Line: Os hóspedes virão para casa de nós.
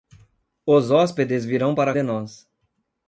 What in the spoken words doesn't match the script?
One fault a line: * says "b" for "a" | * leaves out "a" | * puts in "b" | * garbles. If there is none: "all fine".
* leaves out "casa"